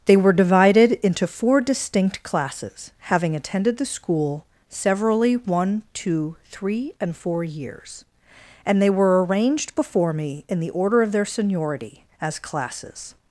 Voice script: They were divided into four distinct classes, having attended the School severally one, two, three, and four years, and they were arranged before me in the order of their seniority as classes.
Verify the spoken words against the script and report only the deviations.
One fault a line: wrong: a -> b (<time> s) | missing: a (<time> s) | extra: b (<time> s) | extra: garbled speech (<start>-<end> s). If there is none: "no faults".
no faults